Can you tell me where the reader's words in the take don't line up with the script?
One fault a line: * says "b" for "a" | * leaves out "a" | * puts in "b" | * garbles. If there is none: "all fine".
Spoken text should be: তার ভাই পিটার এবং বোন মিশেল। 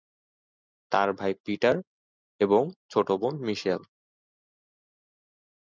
* puts in "ছোট"